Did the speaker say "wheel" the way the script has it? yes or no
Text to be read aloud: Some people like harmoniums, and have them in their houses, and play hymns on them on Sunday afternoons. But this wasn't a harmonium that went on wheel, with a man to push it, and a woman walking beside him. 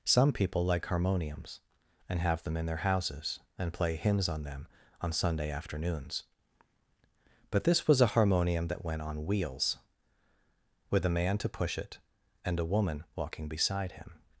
no